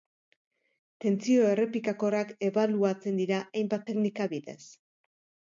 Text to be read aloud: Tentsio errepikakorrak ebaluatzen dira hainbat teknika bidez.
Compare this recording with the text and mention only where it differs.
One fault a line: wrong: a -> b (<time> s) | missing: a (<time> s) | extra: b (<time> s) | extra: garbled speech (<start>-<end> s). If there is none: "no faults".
no faults